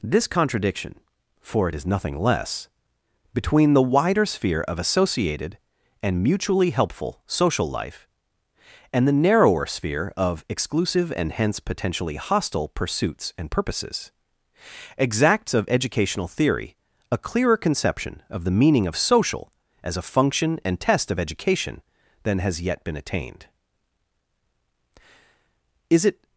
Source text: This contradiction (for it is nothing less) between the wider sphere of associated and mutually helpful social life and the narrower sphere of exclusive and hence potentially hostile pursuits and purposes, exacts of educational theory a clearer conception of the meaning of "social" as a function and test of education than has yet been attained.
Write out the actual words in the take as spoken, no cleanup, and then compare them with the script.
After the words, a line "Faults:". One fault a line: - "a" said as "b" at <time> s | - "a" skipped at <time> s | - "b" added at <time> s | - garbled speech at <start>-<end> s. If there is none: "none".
This contradiction (for it is nothing less) between the wider sphere of associated and mutually helpful social life and the narrower sphere of exclusive and hence potentially hostile pursuits and purposes, exacts of educational theory a clearer conception of the meaning of "social" as a function and test of education than has yet been attained. Is it
Faults:
- "Is it" added at 25.9 s